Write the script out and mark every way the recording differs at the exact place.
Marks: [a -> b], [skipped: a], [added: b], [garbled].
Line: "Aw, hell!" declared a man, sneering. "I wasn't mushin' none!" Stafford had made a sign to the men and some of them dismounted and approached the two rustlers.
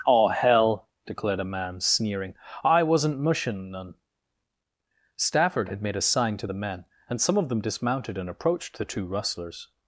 "Aw, hell!" declared a man, sneering. "I wasn't mushin' none!" Stafford had made a sign to the men and some of them dismounted and approached the two rustlers.